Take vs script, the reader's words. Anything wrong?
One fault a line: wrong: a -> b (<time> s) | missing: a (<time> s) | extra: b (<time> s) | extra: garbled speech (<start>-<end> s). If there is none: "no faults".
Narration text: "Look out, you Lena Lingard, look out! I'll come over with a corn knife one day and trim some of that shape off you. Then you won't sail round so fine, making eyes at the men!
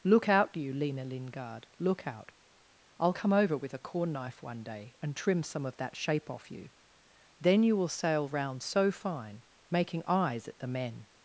wrong: won't -> will (7.8 s)